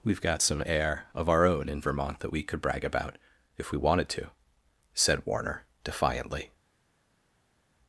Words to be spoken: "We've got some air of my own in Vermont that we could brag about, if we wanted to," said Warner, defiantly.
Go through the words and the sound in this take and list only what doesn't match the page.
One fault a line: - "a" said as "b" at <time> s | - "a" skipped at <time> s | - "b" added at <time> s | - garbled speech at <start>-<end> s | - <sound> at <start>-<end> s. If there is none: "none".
- "my" said as "our" at 1.3 s